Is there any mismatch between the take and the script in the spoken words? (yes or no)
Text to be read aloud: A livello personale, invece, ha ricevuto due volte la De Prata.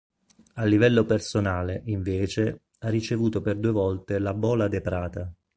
yes